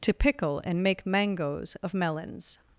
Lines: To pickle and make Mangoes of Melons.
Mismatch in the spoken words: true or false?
false